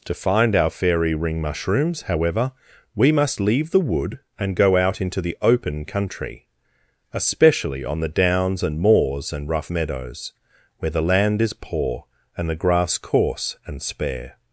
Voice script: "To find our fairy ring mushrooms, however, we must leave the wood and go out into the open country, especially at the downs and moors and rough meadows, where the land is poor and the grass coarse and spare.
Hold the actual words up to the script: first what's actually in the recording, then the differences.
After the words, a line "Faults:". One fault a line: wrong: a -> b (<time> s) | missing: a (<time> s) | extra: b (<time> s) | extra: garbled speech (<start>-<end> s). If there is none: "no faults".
"To find our fairy ring mushrooms, however, we must leave the wood and go out into the open country, especially on the downs and moors and rough meadows, where the land is poor and the grass coarse and spare.
Faults:
wrong: at -> on (7.8 s)